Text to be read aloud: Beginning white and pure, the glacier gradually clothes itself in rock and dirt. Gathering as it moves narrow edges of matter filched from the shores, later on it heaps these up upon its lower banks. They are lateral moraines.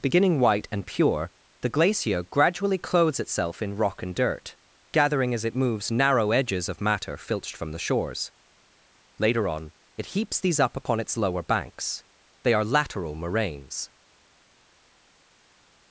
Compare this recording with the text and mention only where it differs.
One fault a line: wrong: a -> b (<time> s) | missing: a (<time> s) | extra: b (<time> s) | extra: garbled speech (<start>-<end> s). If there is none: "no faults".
no faults